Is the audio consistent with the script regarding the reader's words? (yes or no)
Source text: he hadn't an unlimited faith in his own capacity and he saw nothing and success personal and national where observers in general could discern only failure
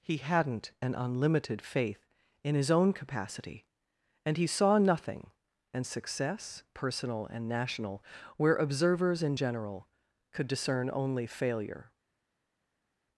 yes